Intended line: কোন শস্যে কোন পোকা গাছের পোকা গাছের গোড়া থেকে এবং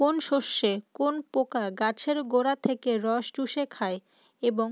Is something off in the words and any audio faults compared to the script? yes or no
yes